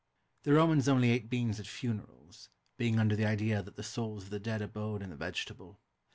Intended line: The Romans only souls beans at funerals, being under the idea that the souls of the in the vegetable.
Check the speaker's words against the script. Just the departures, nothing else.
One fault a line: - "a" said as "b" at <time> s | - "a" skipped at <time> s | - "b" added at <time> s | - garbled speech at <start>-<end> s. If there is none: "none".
- "souls" said as "ate" at 1.1 s
- "dead abode" added at 4.4 s